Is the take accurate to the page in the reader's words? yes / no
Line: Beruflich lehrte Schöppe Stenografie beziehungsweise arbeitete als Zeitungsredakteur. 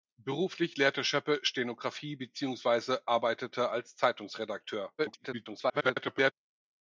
no